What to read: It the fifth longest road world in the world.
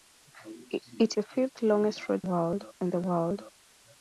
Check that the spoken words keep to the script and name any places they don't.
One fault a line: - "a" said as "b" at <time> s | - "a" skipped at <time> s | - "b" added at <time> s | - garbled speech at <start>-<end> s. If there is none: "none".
none